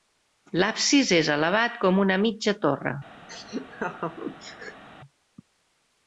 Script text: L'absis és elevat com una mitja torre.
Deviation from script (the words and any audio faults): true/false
true